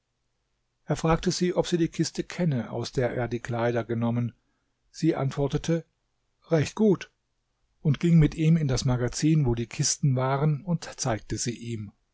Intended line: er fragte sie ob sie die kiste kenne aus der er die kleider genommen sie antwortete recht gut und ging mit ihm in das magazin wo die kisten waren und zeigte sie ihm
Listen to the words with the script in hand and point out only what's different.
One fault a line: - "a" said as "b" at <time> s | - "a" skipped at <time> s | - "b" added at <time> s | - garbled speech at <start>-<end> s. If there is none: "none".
none